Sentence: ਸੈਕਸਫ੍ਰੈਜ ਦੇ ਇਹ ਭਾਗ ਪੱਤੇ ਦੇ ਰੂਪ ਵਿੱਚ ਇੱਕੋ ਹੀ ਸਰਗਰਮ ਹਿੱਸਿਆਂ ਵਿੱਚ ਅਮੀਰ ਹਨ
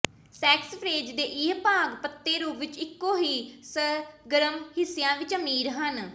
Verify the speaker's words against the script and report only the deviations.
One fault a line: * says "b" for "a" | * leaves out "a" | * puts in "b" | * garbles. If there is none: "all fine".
* leaves out "ਦੇ"